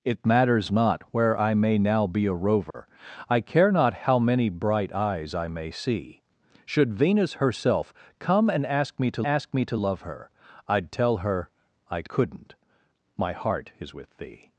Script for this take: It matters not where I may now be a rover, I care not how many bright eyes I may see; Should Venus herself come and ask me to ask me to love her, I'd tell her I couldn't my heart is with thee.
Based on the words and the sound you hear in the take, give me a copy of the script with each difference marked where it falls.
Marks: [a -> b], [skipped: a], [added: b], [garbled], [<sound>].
It matters not where I may now be a rover, [dropout] I care not how many bright eyes I may see; Should Venus herself come and ask me to ask me to love her, I'd tell her I couldn't my heart is with thee.